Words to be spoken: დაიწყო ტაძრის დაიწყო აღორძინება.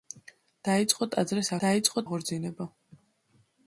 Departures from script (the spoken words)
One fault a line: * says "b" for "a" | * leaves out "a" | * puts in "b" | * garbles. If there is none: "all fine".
all fine